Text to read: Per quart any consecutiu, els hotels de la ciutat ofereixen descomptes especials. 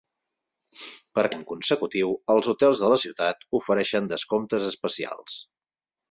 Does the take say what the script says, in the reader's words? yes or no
no